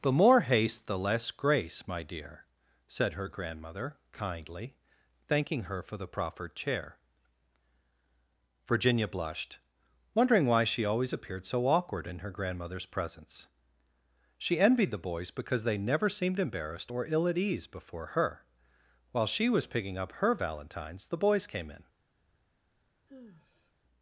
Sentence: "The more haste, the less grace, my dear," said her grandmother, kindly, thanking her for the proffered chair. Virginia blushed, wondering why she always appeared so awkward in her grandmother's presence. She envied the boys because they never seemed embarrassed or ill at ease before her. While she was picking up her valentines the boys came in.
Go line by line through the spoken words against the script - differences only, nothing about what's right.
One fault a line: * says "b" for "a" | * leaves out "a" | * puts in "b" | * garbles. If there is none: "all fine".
all fine